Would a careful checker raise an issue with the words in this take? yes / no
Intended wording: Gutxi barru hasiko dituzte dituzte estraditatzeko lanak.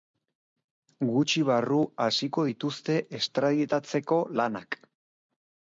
yes